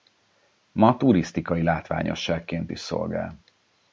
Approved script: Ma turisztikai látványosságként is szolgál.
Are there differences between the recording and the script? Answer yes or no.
no